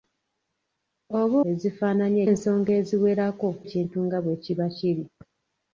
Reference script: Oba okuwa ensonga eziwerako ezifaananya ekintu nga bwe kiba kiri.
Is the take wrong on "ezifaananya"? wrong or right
wrong